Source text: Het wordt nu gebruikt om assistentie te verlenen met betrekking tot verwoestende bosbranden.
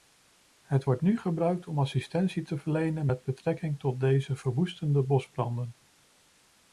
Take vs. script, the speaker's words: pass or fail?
fail